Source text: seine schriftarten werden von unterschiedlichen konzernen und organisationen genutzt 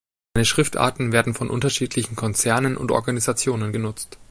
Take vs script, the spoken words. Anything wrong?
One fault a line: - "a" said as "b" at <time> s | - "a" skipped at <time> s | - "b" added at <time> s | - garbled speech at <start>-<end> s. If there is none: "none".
none